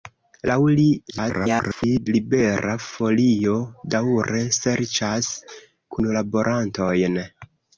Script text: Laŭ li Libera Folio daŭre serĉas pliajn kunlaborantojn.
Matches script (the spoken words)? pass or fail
fail